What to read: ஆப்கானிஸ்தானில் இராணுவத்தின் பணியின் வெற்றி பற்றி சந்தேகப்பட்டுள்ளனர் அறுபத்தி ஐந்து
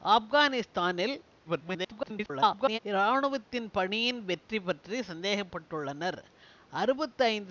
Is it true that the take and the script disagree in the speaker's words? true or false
true